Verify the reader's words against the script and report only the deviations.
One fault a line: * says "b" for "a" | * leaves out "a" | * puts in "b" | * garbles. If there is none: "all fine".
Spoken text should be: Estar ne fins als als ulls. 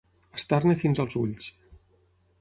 * leaves out "als"